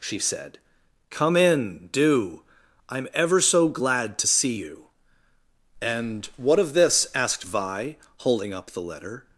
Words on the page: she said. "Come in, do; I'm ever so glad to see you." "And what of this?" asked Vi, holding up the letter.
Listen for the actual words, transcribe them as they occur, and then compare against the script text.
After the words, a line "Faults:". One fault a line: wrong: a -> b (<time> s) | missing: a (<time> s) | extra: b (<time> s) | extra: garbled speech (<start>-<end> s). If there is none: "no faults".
she said. "Come in, do; I'm ever so glad to see you." "And what of this?" asked Vi, holding up the letter.
Faults:
no faults